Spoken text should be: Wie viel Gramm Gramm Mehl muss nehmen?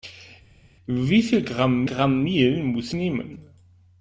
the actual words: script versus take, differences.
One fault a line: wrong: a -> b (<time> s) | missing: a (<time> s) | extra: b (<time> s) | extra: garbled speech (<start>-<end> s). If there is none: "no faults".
no faults